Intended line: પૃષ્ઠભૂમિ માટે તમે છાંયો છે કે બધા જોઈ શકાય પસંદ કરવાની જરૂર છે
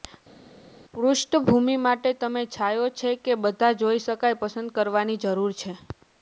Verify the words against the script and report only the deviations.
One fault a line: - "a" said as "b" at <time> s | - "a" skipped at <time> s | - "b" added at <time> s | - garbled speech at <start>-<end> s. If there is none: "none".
none